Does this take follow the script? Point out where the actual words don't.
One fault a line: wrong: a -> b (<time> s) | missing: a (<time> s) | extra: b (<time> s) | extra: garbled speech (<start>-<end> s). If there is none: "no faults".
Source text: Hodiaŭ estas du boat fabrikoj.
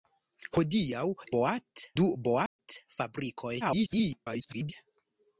wrong: estas -> boat (1.4 s)
extra: garbled speech (3.6-4.7 s)